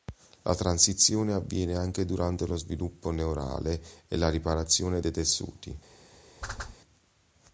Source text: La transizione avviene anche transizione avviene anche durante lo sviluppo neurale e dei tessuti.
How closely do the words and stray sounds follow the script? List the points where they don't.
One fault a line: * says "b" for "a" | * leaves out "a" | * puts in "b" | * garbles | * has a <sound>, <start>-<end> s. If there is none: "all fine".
* leaves out "transizione avviene anche"
* puts in "la riparazione"
* has a whoosh, 6.4-6.8 s